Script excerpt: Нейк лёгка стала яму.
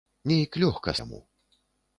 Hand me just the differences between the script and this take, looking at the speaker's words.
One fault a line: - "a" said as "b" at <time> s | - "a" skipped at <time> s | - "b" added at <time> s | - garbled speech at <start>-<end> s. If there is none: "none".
- "стала" skipped at 0.9 s